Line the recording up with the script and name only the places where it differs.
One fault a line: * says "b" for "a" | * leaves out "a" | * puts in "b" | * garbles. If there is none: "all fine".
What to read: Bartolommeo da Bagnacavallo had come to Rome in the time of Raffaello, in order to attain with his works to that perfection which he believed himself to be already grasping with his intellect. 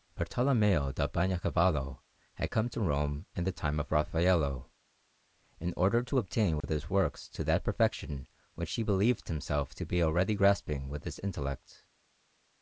all fine